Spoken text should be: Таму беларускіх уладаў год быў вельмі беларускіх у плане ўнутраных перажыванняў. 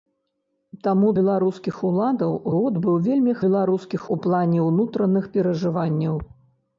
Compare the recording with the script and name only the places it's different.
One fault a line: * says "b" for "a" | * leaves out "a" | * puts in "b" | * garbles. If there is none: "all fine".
all fine